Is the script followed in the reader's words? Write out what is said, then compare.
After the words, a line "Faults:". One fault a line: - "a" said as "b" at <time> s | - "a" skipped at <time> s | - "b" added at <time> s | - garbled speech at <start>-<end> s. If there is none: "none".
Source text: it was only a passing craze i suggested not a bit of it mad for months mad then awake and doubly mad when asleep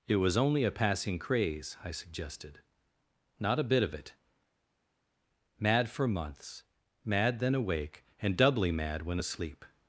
it was only a passing craze i suggested not a bit of it mad for months mad then awake and doubly mad when asleep
Faults:
none